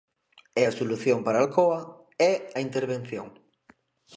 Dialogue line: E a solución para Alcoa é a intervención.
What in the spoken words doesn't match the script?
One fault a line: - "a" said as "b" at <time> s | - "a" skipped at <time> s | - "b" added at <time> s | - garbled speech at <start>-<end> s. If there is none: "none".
none